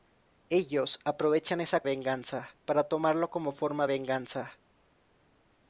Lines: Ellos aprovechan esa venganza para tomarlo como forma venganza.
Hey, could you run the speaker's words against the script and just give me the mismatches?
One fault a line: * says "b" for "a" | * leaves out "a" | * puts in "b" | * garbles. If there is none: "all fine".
all fine